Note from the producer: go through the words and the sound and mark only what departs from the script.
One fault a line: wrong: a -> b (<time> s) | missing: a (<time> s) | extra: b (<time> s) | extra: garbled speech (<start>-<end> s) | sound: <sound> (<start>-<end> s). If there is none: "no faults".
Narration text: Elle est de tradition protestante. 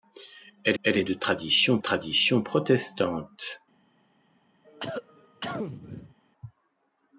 extra: elle (0.8 s)
extra: tradition (1.8 s)
sound: cough (4.6-6.2 s)